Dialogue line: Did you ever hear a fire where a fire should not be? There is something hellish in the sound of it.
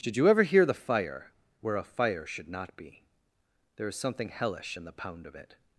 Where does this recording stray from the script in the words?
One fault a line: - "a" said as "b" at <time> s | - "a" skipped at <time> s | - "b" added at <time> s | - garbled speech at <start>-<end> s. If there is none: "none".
- "a" said as "the" at 0.7 s
- "sound" said as "pound" at 4.9 s